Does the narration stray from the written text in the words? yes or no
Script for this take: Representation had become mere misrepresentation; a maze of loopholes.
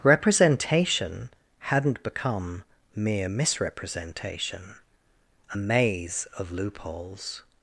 yes